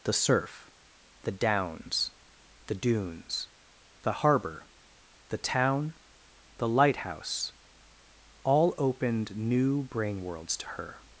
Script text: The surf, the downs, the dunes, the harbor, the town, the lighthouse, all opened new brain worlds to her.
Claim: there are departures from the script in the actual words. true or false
false